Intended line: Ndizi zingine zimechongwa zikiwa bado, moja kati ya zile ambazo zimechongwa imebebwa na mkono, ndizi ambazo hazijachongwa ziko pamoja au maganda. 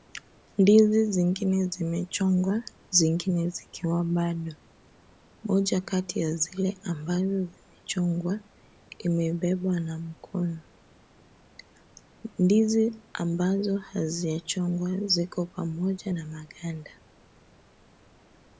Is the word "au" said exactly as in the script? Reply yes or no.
no